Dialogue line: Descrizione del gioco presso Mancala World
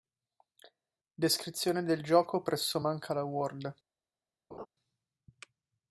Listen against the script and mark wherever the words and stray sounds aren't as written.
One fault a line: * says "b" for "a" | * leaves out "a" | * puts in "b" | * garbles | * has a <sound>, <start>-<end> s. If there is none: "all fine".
* has a laugh, 4.5-4.7 s